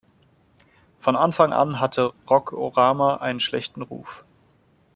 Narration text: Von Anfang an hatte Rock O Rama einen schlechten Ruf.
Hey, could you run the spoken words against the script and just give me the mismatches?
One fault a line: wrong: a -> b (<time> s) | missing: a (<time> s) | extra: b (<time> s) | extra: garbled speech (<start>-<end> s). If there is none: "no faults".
no faults